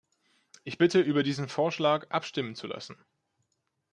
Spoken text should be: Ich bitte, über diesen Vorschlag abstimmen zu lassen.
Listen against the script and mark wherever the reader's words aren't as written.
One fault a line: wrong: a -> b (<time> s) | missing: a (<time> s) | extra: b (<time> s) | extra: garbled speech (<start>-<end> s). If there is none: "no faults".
no faults